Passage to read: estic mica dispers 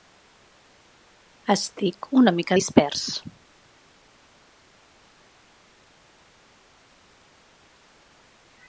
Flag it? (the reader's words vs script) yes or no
yes